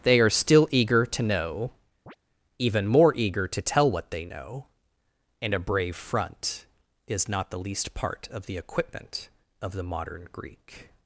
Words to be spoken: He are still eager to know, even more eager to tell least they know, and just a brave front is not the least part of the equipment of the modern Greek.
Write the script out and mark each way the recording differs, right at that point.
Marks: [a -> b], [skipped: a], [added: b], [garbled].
[He -> They] are still eager to know, even more eager to tell [least -> what] they know, and [skipped: just] a brave front is not the least part of the equipment of the modern Greek.